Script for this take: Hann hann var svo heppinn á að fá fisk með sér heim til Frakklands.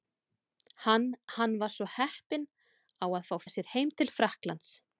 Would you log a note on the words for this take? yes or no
yes